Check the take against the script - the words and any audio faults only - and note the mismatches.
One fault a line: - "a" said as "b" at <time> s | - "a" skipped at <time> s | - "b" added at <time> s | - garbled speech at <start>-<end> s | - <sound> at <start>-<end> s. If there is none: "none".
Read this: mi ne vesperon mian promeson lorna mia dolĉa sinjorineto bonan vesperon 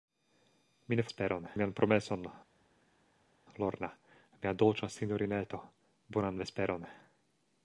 none